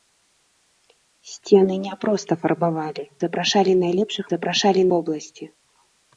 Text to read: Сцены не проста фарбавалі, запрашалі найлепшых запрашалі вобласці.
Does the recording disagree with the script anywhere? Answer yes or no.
no